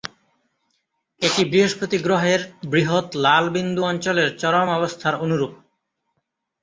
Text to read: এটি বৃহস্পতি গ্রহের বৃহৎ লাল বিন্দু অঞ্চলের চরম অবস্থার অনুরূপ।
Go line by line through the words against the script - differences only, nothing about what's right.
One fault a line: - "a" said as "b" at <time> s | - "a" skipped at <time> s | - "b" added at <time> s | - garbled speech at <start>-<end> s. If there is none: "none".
none